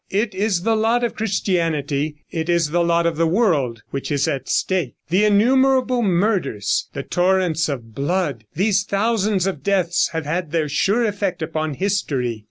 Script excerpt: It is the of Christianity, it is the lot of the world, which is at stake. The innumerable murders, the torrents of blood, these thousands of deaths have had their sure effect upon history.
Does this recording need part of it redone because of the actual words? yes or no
yes